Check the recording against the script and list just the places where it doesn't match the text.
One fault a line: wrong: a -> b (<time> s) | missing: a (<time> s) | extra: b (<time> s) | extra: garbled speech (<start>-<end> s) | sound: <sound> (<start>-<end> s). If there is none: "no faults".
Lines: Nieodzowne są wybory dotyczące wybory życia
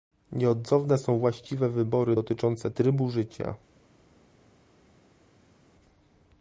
extra: właściwe (1.2 s)
wrong: wybory -> trybu (2.7 s)